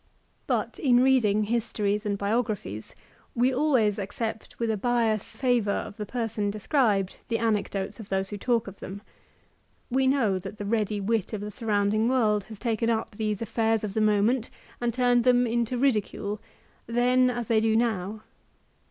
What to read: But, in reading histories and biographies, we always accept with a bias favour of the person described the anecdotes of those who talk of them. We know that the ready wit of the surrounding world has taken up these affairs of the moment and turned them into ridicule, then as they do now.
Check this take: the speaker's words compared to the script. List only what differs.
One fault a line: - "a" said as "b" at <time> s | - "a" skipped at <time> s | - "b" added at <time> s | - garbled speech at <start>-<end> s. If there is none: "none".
none